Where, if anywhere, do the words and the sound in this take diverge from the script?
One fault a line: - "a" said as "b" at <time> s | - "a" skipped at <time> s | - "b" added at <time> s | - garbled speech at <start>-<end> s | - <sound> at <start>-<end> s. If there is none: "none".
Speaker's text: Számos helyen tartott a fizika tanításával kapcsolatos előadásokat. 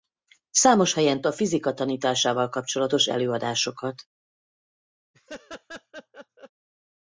- "tartott" skipped at 1.2 s
- laugh at 5.1-6.5 s